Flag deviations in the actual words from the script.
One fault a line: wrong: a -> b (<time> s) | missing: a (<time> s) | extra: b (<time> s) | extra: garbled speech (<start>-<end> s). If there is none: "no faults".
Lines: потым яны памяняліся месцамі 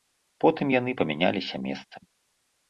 no faults